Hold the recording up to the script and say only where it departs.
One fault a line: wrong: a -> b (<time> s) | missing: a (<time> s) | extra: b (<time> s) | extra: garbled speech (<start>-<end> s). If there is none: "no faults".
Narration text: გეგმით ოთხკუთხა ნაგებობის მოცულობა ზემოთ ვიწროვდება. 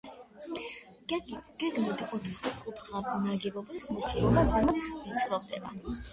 no faults